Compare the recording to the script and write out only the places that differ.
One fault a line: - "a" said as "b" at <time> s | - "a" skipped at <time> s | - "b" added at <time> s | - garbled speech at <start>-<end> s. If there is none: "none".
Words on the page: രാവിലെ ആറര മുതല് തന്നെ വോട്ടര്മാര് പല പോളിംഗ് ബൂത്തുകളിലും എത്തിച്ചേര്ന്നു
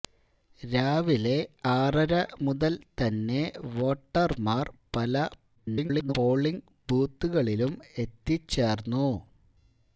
- garbled speech at 5.6-6.1 s